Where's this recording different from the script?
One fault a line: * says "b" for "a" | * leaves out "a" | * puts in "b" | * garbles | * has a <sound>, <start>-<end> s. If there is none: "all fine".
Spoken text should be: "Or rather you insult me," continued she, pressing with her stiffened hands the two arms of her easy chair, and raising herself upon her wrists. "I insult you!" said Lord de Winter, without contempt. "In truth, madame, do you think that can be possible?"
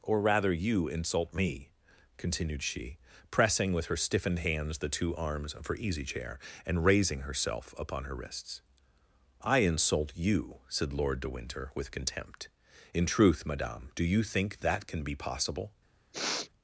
* says "with" for "without"
* has a sniff, 16.1-16.5 s